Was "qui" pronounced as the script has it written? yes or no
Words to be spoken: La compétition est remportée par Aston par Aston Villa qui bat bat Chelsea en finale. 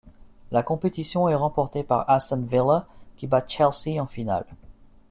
yes